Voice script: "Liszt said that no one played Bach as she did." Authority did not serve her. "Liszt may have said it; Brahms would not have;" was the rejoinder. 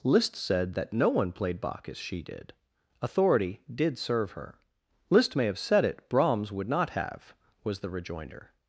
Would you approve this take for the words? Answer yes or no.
no